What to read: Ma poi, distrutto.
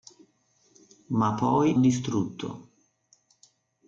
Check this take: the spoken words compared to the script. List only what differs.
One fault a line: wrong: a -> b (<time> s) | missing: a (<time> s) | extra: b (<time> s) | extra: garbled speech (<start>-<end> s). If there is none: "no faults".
no faults